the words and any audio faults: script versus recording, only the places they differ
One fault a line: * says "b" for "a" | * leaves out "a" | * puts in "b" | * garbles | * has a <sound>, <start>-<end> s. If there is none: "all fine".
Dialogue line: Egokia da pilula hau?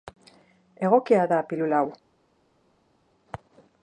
all fine